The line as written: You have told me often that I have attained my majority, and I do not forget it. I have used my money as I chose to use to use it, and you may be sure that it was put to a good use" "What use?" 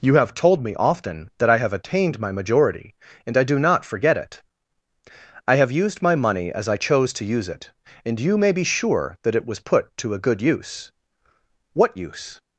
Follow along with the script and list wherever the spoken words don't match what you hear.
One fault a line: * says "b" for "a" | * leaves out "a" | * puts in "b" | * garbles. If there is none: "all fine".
* leaves out "to use"